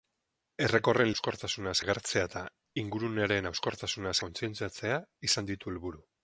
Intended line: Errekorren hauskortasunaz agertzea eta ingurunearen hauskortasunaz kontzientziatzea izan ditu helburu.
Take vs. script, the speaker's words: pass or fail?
pass